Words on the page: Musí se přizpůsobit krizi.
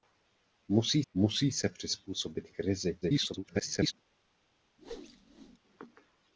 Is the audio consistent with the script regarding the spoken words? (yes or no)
no